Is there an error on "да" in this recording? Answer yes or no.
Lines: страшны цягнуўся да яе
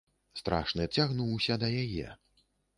no